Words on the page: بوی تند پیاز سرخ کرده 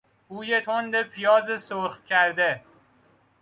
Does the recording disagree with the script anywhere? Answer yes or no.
no